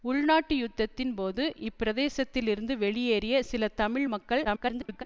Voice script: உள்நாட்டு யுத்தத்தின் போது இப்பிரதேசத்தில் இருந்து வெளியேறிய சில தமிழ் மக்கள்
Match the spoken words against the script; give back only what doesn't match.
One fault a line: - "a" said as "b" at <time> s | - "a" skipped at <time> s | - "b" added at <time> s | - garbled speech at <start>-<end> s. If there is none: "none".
- garbled speech at 4.4-5.0 s